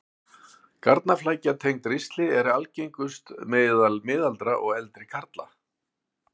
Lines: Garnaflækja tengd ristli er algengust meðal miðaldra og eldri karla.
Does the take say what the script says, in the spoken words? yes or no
yes